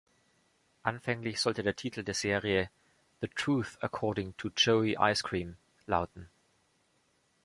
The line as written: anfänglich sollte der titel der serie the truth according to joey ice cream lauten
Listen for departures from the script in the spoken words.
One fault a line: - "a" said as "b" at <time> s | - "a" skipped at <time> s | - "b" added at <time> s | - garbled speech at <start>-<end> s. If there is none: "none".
none